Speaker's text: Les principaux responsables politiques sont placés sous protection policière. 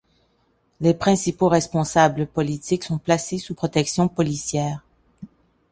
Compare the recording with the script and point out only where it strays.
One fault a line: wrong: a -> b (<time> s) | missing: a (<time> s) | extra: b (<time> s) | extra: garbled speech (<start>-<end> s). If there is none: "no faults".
no faults